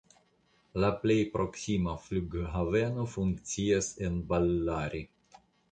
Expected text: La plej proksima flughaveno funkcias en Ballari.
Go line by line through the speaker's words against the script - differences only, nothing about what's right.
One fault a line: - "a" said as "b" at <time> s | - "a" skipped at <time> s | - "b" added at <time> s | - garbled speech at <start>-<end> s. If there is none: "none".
none